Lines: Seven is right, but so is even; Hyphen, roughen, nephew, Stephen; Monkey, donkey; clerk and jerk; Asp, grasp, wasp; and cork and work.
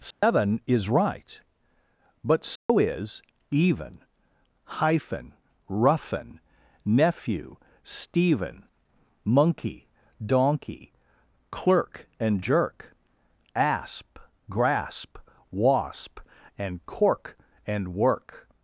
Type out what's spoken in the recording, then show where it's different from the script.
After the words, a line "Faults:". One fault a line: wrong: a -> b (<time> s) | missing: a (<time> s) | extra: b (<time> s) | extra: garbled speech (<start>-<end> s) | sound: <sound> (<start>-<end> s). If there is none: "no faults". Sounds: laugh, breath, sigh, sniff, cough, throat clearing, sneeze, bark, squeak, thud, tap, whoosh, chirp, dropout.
Seven is right, but so is even; Hyphen, roughen, nephew, Stephen; Monkey, donkey; clerk and jerk; Asp, grasp, wasp; and cork and work.
Faults:
sound: dropout (0.1-0.2 s)
sound: dropout (2.6-2.7 s)